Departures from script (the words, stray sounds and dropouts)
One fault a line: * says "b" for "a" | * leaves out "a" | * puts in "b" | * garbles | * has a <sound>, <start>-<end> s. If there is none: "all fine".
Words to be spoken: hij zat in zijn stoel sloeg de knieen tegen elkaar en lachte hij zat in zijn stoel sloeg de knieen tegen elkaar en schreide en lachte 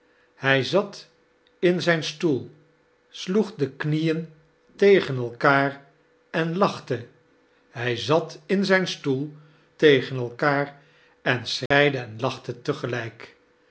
* leaves out "sloeg de knieen"
* has a dropout, 11.7-11.7 s